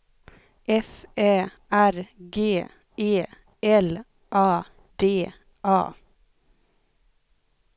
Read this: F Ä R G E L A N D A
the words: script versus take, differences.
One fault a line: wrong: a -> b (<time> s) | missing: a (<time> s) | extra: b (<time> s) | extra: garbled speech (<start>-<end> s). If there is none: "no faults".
missing: N (4.6 s)